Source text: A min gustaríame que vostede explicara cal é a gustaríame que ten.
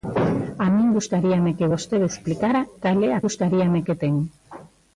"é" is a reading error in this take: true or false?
false